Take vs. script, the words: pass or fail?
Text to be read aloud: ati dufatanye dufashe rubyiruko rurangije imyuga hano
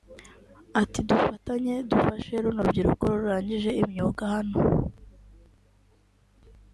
fail